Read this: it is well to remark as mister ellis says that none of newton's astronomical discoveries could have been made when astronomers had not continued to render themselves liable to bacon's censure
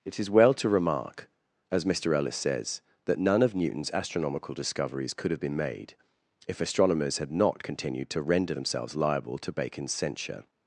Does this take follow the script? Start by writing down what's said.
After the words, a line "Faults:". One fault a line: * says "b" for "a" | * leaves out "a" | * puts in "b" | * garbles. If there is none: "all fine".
it is well to remark as mister ellis says that none of newton's astronomical discoveries could have been made if astronomers had not continued to render themselves liable to bacon's censure
Faults:
* says "if" for "when"